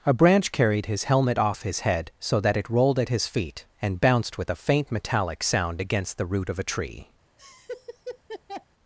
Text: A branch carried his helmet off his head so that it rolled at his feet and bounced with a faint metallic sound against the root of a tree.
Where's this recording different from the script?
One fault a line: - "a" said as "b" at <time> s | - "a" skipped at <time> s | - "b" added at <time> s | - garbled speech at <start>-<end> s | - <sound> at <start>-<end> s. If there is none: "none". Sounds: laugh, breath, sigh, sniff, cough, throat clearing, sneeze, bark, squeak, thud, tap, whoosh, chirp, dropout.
- laugh at 7.4-8.7 s